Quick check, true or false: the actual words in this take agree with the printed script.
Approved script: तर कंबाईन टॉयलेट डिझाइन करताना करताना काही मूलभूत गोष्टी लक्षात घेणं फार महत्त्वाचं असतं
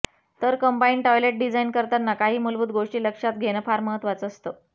false